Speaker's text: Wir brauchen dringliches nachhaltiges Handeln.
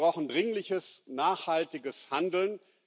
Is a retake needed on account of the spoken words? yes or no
no